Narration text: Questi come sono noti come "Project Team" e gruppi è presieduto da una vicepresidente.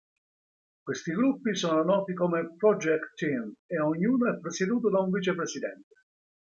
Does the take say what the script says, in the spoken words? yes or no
no